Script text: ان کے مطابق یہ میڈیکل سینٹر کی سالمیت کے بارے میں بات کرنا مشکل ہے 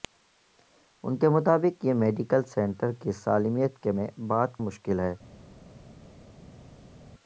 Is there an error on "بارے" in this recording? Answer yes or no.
yes